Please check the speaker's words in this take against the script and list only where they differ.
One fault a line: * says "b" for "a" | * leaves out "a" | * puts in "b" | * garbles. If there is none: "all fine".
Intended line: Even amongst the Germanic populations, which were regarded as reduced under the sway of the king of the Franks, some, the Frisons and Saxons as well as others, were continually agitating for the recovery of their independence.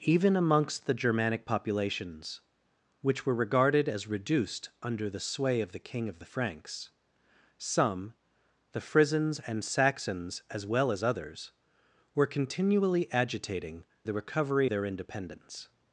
* leaves out "for"
* leaves out "of"